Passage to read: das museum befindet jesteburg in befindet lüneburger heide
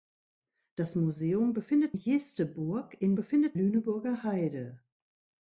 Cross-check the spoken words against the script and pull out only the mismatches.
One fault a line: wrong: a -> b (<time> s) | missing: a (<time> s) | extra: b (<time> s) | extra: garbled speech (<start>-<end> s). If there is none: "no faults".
no faults